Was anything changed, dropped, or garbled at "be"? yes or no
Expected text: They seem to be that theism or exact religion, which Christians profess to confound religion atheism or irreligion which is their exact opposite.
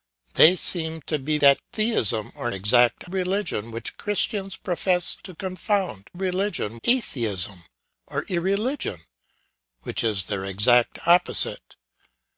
no